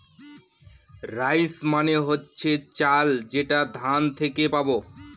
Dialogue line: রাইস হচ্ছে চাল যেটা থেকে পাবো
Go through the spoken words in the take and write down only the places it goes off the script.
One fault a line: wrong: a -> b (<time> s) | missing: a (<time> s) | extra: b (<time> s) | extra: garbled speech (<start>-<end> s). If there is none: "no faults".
extra: মানে (1.6 s)
extra: ধান (3.8 s)